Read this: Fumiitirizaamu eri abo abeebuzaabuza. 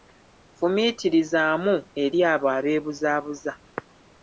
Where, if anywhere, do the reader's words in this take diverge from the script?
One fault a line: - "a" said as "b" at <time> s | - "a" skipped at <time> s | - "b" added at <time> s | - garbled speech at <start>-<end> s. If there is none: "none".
none